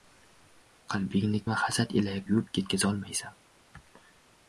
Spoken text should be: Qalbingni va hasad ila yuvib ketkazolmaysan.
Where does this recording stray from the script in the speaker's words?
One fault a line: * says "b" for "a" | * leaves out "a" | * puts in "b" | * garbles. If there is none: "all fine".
all fine